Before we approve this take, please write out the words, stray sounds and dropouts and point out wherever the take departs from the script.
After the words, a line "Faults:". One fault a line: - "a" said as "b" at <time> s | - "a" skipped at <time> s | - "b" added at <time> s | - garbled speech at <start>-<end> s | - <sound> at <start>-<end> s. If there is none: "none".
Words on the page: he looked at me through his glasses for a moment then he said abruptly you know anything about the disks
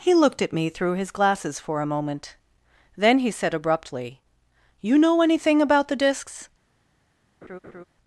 he looked at me through his glasses for a moment then he said abruptly you know anything about the disks
Faults:
- laugh at 7.4-7.8 s